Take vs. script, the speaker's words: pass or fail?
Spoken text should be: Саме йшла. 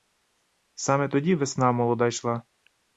fail